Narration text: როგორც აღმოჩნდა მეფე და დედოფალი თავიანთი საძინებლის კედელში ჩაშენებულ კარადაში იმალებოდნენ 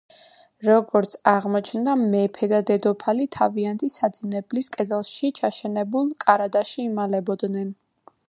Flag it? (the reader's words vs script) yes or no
no